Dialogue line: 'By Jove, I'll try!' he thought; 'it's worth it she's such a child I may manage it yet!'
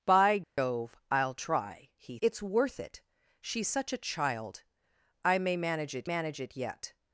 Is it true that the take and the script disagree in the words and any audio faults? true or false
true